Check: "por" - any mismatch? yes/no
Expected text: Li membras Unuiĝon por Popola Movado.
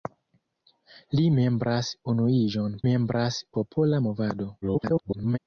yes